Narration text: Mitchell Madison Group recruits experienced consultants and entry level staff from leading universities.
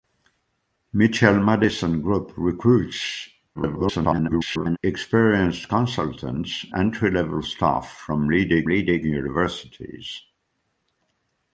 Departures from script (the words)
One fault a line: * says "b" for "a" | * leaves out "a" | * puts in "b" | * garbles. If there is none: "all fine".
* garbles
* leaves out "and"
* puts in "leading"